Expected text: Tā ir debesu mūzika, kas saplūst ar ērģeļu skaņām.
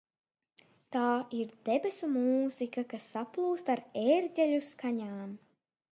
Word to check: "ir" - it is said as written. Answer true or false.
true